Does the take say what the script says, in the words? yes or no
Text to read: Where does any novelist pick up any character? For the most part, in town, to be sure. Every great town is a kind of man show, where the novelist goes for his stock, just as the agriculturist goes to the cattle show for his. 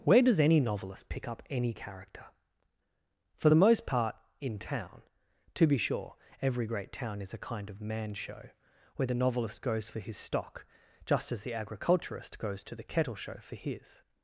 no